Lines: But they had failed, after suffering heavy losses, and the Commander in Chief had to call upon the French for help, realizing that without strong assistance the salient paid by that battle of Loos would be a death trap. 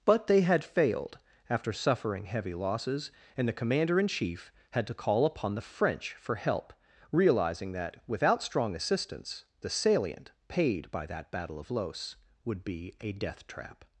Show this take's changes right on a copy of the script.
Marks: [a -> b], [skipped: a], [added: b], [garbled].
But they had failed, after suffering heavy losses, and the Commander in Chief had to call upon the French for help, realizing that without strong assistance the salient paid by that battle of Loos would be a death trap.